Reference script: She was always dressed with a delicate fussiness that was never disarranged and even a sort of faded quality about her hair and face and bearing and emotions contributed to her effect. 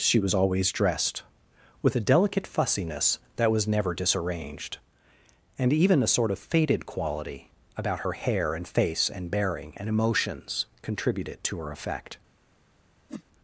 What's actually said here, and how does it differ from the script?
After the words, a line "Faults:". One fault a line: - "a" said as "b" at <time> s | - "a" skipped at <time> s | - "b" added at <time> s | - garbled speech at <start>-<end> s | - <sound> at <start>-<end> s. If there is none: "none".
She was always dressed with a delicate fussiness that was never disarranged and even a sort of faded quality about her hair and face and bearing and emotions contributed to her effect.
Faults:
- whoosh at 13.1-13.2 s